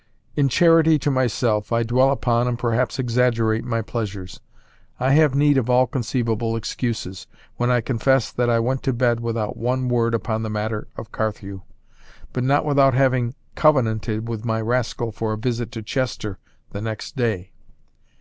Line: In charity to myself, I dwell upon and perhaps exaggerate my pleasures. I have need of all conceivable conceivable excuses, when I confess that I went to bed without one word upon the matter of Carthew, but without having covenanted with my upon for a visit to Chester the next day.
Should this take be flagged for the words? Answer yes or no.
yes